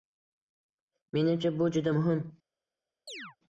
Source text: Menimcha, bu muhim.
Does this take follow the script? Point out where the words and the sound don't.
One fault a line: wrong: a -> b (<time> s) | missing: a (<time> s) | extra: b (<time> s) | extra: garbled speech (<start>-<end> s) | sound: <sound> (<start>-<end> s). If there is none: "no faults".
extra: juda (1.7 s)
sound: chirp (3.1-3.4 s)